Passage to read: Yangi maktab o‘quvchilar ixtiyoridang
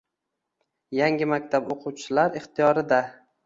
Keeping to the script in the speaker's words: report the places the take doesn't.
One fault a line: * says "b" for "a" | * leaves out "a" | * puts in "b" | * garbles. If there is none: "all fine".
all fine